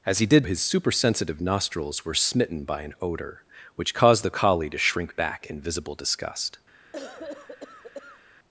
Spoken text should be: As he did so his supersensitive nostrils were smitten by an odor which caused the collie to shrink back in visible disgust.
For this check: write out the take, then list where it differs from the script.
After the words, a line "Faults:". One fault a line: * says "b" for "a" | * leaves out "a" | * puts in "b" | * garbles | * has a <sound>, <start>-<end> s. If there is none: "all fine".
As he did his supersensitive nostrils were smitten by an odor which caused the collie to shrink back in visible disgust.
Faults:
* leaves out "so"
* has a cough, 6.9-8.2 s